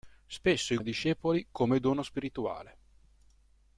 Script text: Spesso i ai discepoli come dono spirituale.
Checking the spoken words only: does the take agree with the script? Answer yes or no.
yes